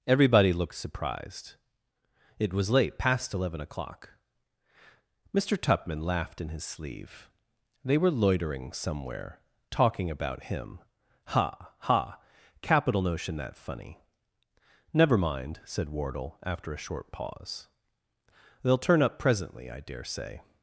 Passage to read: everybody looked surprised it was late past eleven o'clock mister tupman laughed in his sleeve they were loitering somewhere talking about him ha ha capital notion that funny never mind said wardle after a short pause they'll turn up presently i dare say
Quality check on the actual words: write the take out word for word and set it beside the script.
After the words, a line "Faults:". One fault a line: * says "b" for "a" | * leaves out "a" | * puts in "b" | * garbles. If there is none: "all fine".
everybody looked surprised it was late past eleven o'clock mister tupman laughed in his sleeve they were loitering somewhere talking about him ha ha capital notion that funny never mind said wardle after a short pause they'll turn up presently i dare say
Faults:
all fine